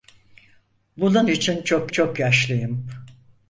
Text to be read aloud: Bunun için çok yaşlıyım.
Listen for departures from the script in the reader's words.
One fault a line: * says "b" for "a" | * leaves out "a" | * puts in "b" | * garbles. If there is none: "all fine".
* puts in "çok"